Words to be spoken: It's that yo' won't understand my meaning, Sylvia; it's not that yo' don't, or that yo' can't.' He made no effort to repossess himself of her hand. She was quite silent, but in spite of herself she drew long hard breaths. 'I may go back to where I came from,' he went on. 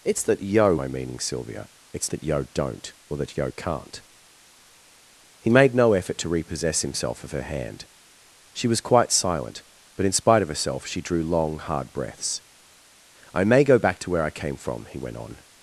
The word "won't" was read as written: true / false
false